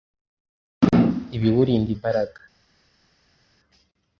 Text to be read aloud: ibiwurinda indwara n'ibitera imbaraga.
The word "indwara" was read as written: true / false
false